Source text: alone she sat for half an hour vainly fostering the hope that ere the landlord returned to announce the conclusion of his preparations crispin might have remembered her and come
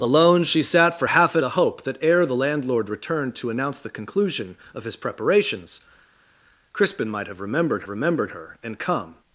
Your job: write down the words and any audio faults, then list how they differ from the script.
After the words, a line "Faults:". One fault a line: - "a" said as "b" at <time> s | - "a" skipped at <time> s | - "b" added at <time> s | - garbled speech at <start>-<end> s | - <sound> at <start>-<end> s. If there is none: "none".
alone she sat for half an the hope that ere the landlord returned to announce the conclusion of his preparations crispin might have remembered remembered her and come
Faults:
- "hour vainly fostering" skipped at 1.4 s
- "remembered" added at 7.9 s